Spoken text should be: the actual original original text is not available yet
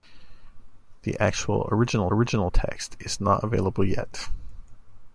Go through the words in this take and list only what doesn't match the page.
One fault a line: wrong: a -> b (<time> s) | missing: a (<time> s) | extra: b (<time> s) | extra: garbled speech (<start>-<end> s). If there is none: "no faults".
no faults